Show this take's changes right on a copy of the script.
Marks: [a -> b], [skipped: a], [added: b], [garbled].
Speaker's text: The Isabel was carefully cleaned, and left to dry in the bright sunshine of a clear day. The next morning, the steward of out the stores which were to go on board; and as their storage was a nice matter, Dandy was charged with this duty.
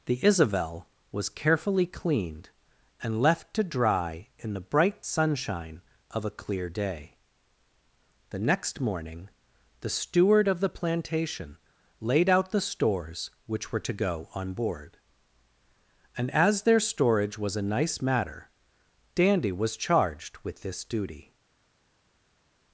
The Isabel was carefully cleaned, and left to dry in the bright sunshine of a clear day. The next morning, the steward of [added: the plantation laid] out the stores which were to go on board; and as their storage was a nice matter, Dandy was charged with this duty.